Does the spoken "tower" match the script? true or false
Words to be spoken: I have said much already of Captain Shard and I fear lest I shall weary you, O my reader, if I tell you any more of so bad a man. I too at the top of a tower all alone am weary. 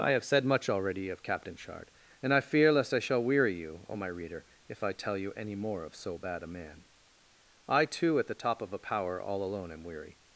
false